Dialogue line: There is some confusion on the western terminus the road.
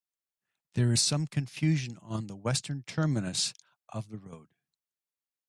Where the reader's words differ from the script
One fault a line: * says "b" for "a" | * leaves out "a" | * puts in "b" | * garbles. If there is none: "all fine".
* puts in "of"